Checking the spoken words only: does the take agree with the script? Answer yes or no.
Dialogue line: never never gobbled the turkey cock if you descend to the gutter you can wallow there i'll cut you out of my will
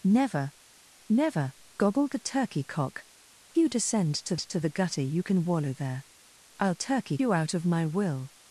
no